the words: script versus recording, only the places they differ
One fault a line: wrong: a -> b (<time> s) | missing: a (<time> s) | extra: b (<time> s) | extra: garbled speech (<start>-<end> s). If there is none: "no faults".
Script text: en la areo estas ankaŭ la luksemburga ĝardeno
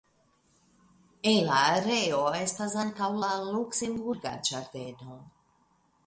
no faults